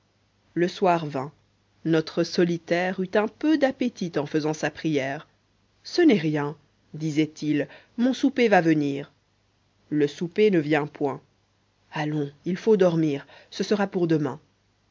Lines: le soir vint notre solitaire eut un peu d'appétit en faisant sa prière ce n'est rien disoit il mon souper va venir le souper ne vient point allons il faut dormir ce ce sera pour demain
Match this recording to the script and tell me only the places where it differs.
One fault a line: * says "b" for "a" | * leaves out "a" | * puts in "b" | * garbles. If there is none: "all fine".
* leaves out "ce"